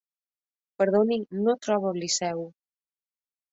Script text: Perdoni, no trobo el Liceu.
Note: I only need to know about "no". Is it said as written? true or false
true